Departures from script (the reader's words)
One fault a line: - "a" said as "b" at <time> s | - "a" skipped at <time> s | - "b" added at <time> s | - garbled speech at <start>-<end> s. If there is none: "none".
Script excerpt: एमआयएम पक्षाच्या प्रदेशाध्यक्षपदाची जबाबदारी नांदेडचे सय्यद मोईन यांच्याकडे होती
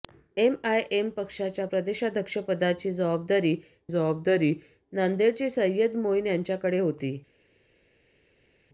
- "जबाबदारी" added at 3.9 s